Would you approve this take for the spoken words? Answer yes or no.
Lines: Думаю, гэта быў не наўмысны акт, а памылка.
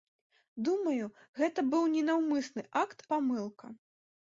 no